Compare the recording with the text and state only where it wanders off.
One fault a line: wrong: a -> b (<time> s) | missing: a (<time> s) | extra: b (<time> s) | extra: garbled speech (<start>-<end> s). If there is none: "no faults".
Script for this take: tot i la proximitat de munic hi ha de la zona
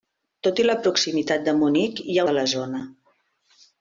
no faults